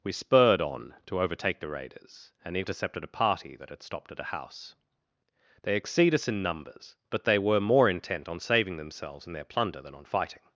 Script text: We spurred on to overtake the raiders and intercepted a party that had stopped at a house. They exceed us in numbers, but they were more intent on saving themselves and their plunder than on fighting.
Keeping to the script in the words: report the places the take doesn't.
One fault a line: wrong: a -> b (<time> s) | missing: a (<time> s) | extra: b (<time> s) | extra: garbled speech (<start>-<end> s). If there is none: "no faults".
no faults